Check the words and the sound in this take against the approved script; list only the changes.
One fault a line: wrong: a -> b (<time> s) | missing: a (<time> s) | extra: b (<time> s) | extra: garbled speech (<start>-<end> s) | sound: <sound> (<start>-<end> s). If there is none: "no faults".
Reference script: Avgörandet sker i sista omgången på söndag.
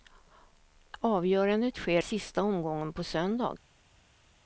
missing: i (2.0 s)